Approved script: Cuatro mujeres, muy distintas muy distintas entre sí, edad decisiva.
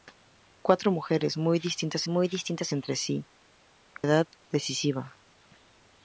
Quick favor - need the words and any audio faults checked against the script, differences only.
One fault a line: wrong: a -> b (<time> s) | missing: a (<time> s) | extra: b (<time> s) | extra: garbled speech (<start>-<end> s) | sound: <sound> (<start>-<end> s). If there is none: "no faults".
no faults